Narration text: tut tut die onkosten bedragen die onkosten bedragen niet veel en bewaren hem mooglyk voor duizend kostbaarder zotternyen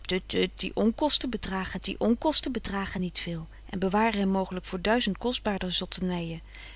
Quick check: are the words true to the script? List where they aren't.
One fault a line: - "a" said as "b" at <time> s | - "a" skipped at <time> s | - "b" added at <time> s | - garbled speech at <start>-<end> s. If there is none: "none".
none